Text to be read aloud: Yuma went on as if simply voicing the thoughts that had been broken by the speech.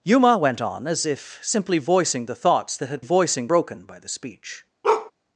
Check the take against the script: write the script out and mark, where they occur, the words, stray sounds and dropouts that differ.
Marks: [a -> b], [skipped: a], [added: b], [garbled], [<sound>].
Yuma went on as if simply voicing the thoughts that had [been -> voicing] broken by the speech. [bark]